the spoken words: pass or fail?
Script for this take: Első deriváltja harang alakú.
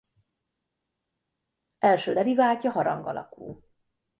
pass